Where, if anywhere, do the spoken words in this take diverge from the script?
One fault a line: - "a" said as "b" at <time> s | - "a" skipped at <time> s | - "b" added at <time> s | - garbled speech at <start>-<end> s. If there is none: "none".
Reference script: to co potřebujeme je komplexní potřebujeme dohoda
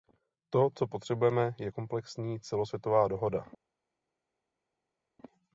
- "potřebujeme" said as "celosvětová" at 2.4 s